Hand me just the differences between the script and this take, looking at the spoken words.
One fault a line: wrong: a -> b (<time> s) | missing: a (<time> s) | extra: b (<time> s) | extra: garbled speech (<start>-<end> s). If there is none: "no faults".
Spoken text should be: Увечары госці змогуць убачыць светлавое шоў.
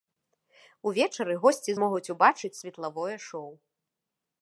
no faults